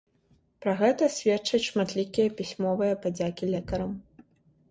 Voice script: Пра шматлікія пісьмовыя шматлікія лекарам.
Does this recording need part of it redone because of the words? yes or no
yes